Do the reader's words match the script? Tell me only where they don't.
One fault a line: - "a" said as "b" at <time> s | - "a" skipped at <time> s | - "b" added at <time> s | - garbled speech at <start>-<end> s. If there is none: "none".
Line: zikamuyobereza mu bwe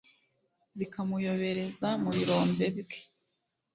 - "birombe" added at 2.1 s